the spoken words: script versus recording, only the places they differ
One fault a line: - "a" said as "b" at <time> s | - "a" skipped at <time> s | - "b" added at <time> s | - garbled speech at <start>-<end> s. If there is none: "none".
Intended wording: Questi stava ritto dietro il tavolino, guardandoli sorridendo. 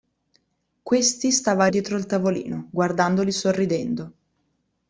- "ritto" skipped at 1.7 s